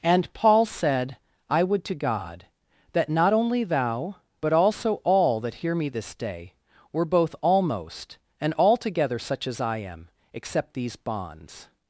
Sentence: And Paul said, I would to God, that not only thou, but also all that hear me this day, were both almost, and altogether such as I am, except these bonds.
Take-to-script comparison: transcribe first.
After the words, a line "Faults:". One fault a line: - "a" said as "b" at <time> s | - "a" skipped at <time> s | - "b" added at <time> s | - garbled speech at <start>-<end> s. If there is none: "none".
And Paul said, I would to God, that not only thou, but also all that hear me this day, were both almost, and altogether such as I am, except these bonds.
Faults:
none